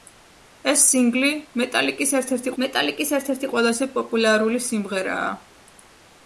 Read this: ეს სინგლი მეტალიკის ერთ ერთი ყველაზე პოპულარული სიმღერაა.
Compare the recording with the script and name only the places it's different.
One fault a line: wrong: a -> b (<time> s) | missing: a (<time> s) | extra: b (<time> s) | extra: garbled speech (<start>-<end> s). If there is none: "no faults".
extra: მეტალიკის ერთ ერთი (2.6 s)